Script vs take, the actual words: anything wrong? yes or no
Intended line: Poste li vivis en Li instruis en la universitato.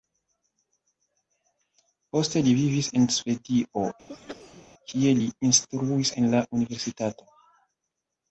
yes